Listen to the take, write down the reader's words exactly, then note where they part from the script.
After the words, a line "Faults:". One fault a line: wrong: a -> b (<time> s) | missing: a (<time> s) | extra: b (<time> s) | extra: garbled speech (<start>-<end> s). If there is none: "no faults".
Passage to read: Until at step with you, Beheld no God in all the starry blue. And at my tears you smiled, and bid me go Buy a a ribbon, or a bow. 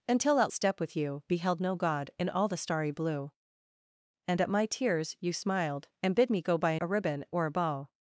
Until at step with you, Beheld no God in all the starry blue. And at my tears you smiled, and bid me go Buy a a ribbon, or a bow.
Faults:
no faults